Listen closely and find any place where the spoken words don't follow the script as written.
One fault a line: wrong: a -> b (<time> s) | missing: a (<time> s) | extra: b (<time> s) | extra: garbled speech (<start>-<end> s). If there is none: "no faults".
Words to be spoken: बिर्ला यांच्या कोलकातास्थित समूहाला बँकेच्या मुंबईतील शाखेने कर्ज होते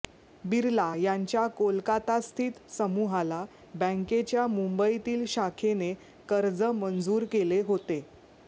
extra: मंजूर केले (6.6 s)